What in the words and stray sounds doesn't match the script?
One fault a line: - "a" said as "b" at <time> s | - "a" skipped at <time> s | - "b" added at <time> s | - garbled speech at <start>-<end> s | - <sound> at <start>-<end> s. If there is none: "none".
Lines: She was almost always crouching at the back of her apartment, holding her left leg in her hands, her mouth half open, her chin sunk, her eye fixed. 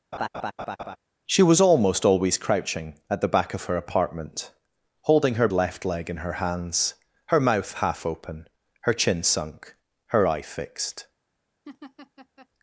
- laugh at 0.1-1.0 s
- laugh at 11.7-12.5 s